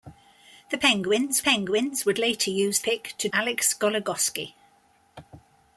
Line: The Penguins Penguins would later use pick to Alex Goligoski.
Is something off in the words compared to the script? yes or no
no